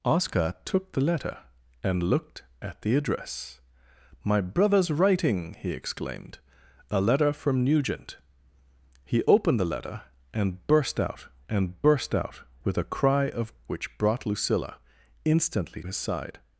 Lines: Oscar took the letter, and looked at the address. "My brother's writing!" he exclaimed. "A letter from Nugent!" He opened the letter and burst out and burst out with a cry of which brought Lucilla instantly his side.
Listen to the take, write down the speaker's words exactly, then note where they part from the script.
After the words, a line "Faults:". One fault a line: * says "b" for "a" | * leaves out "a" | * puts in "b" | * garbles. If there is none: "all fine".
Oscar took the letter, and looked at the address. "My brother's writing!" he exclaimed. "A letter from Nugent!" He opened the letter and burst out and burst out with a cry of which brought Lucilla instantly his side.
Faults:
all fine